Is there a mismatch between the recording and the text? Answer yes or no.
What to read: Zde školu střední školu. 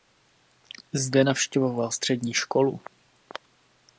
yes